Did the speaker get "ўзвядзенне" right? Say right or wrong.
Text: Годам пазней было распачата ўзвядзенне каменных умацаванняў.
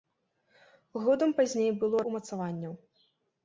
wrong